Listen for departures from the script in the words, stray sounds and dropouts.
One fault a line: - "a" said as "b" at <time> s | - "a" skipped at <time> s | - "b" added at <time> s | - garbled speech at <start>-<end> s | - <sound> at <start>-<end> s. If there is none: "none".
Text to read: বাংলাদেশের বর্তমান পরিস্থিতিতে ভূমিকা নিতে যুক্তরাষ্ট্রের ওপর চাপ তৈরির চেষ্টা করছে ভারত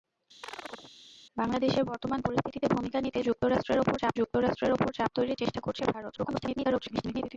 - chirp at 0.4-0.9 s
- "যুক্তরাষ্ট্রের ওপর চাপ" added at 4.2 s
- garbled speech at 6.1-7.4 s